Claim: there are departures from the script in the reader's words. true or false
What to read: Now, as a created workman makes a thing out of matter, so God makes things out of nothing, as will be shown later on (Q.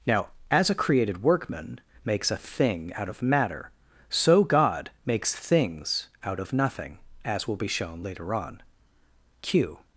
false